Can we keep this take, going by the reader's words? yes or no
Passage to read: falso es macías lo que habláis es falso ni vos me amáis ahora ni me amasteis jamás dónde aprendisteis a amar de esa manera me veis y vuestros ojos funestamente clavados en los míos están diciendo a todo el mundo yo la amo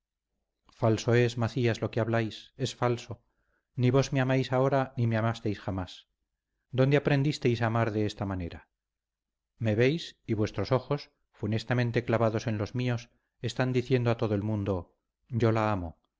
no